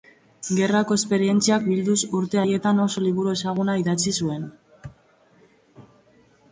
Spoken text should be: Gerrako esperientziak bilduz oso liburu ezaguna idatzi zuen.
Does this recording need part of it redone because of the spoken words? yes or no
yes